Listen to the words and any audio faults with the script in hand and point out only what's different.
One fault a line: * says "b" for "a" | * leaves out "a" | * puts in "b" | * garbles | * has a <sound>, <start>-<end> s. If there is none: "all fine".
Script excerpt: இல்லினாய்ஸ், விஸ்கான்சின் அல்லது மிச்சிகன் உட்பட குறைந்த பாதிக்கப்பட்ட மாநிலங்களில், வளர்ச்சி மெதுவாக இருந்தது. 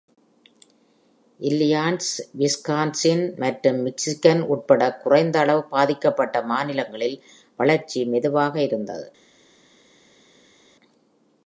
* says "மற்றும்" for "அல்லது"
* puts in "அளவு"